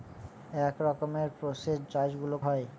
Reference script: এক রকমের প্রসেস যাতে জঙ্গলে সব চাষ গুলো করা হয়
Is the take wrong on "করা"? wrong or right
wrong